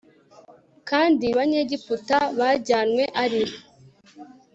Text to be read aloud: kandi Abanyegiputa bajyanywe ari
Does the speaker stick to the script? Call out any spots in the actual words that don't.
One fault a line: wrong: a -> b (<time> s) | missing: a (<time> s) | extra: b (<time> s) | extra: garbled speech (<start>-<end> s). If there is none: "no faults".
no faults